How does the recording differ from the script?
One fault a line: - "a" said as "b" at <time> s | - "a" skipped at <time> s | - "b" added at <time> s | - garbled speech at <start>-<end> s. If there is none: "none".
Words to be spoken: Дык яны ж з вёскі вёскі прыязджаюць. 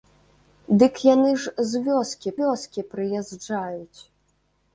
none